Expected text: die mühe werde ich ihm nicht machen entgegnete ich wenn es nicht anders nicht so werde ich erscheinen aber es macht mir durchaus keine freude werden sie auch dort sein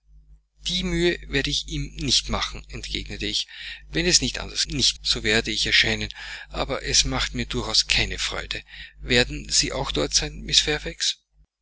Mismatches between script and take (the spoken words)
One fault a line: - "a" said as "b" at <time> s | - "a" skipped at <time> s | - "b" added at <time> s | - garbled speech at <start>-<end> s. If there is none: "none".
none